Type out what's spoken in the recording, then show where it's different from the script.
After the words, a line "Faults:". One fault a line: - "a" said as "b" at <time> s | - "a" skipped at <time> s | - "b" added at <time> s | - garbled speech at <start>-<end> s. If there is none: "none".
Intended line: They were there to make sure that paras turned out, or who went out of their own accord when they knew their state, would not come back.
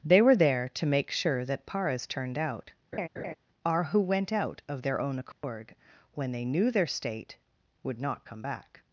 They were there to make sure that paras turned out, are who went out of their own accord when they knew their state, would not come back.
Faults:
- "or" said as "are" at 3.6 s